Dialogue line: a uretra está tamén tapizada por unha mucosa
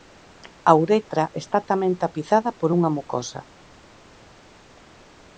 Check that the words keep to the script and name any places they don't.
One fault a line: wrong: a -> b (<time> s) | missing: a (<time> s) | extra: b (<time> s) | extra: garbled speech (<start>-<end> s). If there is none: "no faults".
no faults